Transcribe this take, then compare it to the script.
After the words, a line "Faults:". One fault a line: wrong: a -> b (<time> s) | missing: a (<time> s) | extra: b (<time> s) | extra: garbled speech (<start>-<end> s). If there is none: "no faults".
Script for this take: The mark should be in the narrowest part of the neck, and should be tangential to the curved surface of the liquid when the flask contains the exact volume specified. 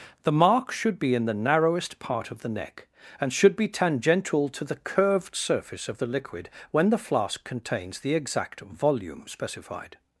The mark should be in the narrowest part of the neck, and should be tangential to the curved surface of the liquid when the flask contains the exact volume specified.
Faults:
no faults